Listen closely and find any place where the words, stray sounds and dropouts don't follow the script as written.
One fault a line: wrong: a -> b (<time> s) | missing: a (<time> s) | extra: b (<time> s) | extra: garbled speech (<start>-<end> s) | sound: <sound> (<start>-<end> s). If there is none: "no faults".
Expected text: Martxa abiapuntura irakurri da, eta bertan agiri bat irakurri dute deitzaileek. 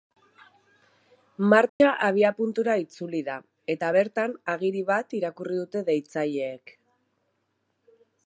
sound: dropout (1.7-1.8 s)
wrong: irakurri -> itzuli (2.9 s)